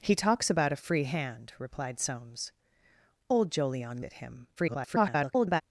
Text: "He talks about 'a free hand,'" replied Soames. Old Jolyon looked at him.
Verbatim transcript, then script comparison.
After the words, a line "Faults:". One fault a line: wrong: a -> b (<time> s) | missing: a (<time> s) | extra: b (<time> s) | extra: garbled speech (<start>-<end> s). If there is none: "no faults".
"He talks about 'a free hand,'" replied Soames. Old Jolyon at him. [garbled]
Faults:
missing: looked (4.0 s)
extra: garbled speech (4.6-5.6 s)